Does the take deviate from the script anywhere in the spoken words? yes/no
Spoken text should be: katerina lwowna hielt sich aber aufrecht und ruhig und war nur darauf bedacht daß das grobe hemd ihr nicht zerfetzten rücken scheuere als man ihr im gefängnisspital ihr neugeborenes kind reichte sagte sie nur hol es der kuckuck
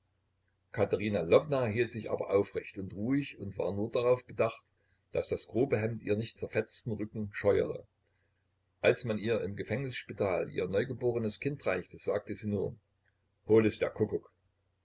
no